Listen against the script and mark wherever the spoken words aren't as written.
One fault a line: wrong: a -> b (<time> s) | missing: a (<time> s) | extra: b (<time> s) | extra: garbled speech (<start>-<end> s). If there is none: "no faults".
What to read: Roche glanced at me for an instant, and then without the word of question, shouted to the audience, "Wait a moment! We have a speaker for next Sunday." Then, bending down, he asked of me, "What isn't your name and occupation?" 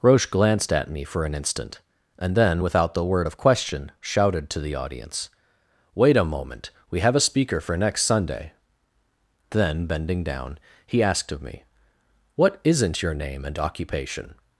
no faults